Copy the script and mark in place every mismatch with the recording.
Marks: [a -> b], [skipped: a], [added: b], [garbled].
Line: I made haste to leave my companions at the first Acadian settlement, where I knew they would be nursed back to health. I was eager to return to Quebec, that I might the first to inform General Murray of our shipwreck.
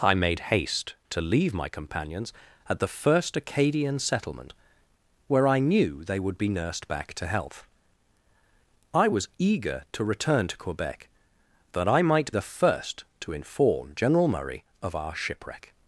I made haste to leave my companions at the first Acadian settlement, where I knew they would be nursed back to health. I was eager to return to Quebec, that I might the first to inform General Murray of our shipwreck.